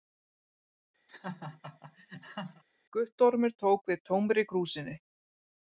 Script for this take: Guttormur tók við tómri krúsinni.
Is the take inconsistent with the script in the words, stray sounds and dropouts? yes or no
yes